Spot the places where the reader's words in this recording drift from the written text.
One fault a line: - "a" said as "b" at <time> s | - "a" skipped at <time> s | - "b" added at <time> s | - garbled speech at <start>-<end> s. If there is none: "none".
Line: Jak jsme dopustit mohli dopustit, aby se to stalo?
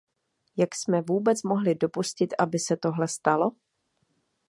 - "dopustit" said as "vůbec" at 1.0 s
- "to" said as "tohle" at 2.8 s